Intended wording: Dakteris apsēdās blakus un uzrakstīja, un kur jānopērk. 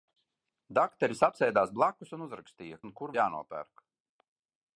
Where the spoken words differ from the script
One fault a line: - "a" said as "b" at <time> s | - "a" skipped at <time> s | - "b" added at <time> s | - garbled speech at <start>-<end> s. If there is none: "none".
none